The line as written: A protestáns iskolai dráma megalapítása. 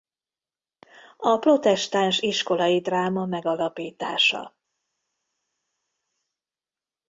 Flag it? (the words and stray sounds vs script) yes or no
no